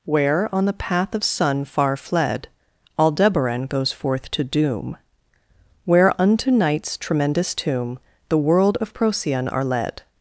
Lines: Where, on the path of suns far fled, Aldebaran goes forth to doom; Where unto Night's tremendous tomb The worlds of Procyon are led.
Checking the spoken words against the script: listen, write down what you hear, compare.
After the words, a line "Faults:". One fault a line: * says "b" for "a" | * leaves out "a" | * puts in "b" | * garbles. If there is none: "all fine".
Where, on the path of sun far fled, Aldebaran goes forth to doom; Where unto Night's tremendous tomb The world of Procyon are led.
Faults:
* says "sun" for "suns"
* says "world" for "worlds"